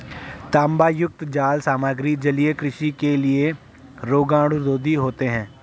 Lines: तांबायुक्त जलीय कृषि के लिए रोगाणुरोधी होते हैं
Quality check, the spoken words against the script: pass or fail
fail